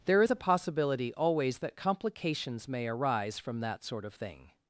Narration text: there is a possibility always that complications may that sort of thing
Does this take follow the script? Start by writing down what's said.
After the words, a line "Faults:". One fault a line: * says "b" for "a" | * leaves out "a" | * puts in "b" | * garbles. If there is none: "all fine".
there is a possibility always that complications may arise from that sort of thing
Faults:
* puts in "arise from"